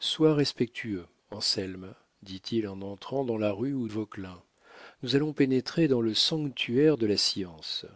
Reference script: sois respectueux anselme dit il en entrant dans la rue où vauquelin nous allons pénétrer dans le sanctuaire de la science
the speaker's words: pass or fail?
pass